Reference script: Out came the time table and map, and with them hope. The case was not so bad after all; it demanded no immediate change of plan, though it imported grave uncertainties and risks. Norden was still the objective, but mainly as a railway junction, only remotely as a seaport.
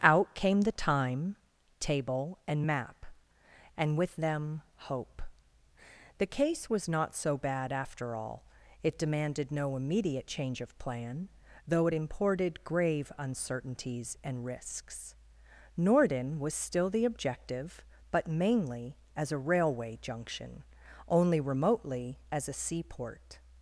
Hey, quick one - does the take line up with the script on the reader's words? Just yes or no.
yes